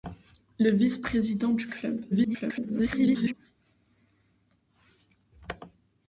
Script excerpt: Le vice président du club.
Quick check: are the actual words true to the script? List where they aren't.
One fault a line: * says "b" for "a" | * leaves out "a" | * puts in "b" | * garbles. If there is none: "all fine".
* garbles